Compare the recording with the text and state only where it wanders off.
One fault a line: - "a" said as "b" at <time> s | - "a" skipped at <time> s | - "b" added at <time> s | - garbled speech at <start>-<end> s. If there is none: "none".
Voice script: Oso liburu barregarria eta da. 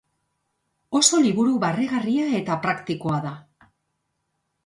- "praktikoa" added at 2.7 s